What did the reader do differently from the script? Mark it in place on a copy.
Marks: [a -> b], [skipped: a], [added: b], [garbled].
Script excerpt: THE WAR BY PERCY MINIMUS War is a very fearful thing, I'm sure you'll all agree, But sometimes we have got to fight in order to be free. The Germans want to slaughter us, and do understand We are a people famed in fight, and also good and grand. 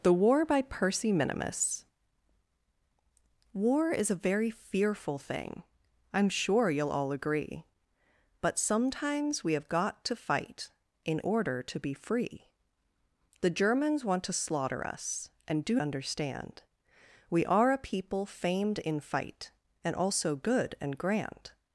THE WAR BY PERCY MINIMUS War is a very fearful thing, I'm sure you'll all agree, But sometimes we have got to fight in order to be free. The Germans want to slaughter us, and do understand We are a people famed in fight, and also good and grand.